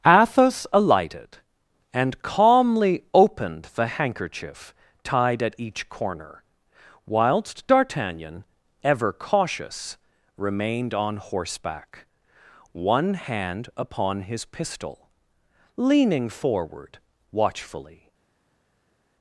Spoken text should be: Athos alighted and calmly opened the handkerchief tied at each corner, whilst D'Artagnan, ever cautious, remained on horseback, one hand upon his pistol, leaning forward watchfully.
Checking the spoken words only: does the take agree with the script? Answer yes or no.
yes